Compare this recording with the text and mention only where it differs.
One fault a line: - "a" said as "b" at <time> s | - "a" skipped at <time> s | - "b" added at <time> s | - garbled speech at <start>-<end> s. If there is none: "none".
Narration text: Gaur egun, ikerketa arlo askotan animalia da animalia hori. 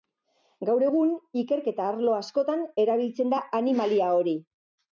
- "animalia" said as "erabiltzen" at 2.8 s